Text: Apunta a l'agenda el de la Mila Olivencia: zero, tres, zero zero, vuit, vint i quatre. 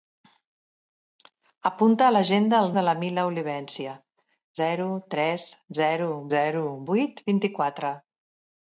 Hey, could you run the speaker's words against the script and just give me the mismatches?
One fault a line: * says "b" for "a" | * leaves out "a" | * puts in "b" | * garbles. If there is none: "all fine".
all fine